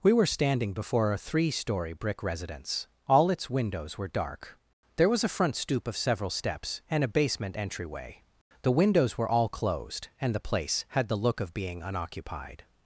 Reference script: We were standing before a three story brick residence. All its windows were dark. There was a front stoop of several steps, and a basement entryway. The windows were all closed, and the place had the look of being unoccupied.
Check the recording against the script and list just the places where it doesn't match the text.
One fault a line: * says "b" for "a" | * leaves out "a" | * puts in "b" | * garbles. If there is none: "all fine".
all fine